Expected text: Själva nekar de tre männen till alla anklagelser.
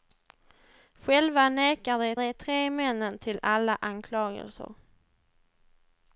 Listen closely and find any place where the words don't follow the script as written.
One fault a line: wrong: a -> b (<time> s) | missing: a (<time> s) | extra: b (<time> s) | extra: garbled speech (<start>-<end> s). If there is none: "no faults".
extra: de (2.2 s)